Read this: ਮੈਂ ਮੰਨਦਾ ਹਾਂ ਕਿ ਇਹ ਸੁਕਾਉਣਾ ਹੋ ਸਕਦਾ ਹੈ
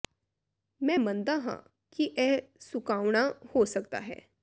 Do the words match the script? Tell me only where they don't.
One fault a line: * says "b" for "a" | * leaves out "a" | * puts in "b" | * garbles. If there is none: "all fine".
all fine